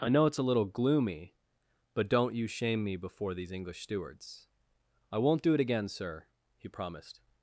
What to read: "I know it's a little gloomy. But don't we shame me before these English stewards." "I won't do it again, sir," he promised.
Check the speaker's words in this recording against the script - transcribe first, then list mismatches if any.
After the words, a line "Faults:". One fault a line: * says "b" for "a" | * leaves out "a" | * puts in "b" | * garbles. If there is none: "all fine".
"I know it's a little gloomy. But don't you shame me before these English stewards." "I won't do it again, sir," he promised.
Faults:
* says "you" for "we"